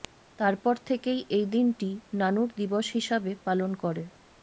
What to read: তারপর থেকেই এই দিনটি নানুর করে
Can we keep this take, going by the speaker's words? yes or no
no